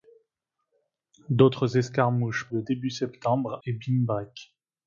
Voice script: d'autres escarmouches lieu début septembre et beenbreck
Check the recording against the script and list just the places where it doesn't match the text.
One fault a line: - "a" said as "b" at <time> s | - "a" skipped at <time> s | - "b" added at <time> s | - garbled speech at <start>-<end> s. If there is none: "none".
none